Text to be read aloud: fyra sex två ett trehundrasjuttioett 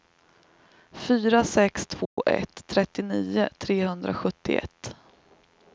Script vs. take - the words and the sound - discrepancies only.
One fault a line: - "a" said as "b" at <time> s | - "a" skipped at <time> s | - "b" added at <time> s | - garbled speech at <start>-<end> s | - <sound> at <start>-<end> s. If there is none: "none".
- dropout at 2.0-2.2 s
- "trettionio" added at 2.7 s